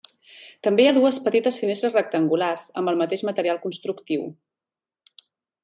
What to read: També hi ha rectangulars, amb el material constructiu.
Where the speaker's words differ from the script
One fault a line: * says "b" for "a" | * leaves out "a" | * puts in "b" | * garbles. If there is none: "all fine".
* puts in "dues petites finestres"
* puts in "mateix"